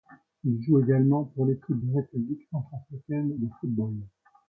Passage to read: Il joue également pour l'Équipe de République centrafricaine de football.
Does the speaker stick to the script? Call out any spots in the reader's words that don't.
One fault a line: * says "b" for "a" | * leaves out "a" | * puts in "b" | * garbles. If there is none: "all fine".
all fine